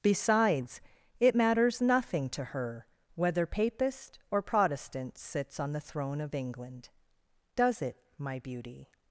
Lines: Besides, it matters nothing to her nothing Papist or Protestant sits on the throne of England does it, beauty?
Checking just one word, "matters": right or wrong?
right